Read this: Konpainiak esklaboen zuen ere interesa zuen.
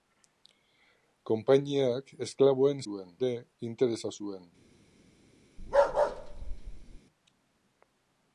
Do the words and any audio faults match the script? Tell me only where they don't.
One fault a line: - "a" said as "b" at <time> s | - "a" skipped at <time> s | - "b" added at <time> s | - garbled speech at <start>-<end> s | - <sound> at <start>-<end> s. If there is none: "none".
- bark at 5.6-7.0 s